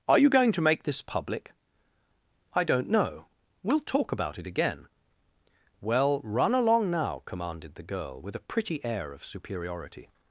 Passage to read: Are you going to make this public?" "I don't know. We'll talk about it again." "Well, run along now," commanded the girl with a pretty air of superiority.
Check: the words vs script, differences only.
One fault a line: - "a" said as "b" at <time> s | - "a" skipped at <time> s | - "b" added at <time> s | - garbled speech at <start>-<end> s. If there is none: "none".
none